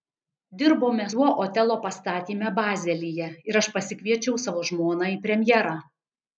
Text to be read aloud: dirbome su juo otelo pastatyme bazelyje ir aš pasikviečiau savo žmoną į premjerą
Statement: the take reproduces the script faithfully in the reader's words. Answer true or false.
false